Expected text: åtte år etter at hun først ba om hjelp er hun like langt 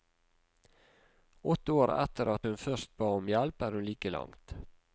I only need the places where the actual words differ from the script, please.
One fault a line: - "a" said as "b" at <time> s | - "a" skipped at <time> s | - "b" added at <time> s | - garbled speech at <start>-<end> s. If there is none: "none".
none